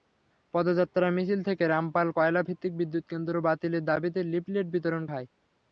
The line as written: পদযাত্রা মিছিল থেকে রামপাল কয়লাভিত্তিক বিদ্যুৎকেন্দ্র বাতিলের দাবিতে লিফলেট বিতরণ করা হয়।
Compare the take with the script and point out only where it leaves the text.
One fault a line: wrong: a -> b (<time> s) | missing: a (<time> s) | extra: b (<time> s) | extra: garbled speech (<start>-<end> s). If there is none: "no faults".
missing: করা (5.0 s)